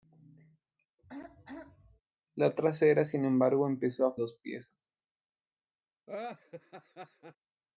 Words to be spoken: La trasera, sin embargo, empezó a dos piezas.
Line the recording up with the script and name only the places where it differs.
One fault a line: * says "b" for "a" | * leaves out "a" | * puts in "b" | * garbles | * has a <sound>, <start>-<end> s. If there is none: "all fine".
* has a throat clearing, 1.0-2.0 s
* has a laugh, 6.1-7.4 s